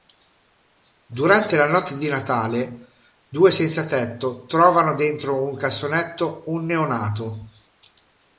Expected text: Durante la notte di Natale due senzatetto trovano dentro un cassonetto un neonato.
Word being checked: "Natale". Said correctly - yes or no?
yes